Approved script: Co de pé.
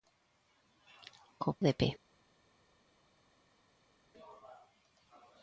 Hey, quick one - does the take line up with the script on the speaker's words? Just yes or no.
yes